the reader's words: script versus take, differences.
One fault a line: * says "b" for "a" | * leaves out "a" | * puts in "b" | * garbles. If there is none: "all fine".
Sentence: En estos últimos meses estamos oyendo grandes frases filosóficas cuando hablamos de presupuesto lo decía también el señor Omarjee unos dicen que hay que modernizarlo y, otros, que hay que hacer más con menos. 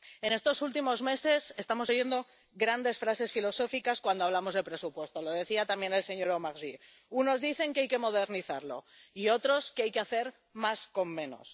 all fine